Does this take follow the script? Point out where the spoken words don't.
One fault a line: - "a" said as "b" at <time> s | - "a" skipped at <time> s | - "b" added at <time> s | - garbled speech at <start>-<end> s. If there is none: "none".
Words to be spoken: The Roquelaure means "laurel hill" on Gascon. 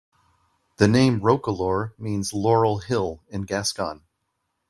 - "name" added at 0.9 s
- "on" said as "in" at 3.3 s